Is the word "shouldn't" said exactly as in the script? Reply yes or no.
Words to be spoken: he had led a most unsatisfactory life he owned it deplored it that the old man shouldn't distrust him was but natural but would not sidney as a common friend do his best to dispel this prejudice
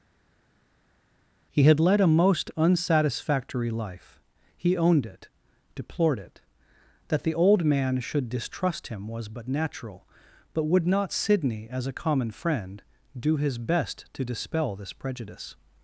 no